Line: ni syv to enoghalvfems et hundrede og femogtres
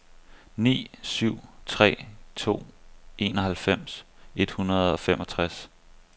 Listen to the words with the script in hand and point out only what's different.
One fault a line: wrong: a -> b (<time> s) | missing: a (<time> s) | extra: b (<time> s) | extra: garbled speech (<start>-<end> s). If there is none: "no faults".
extra: tre (1.7 s)